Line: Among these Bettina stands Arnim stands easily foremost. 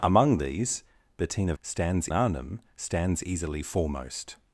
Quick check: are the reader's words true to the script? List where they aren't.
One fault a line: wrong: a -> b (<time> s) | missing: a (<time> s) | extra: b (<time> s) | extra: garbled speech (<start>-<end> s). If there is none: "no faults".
no faults